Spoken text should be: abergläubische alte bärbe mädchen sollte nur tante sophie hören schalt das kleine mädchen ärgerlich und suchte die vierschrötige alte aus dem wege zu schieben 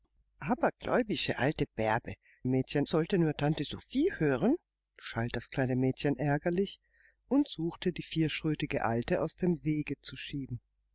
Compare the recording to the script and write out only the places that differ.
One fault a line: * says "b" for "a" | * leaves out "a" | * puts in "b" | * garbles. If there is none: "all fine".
all fine